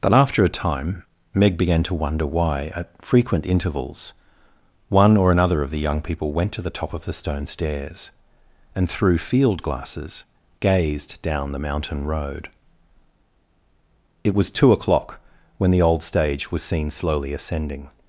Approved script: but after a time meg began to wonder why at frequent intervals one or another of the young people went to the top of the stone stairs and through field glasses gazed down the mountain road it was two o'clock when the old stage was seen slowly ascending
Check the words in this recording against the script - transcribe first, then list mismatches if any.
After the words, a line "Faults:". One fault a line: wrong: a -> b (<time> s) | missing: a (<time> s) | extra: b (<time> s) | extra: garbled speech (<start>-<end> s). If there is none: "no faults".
but after a time meg began to wonder why at frequent intervals one or another of the young people went to the top of the stone stairs and through field glasses gazed down the mountain road it was two o'clock when the old stage was seen slowly ascending
Faults:
no faults